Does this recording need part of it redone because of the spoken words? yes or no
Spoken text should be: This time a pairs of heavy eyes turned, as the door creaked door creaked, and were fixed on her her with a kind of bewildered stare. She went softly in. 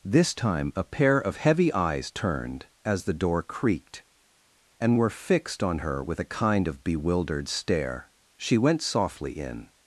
yes